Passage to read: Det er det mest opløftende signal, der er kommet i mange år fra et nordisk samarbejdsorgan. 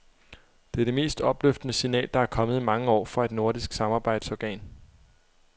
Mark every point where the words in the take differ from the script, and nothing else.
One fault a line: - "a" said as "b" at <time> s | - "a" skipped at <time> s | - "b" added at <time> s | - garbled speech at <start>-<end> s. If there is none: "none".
none